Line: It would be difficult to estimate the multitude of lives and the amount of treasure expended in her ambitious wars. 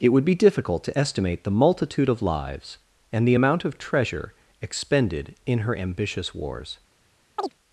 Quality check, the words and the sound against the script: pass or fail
fail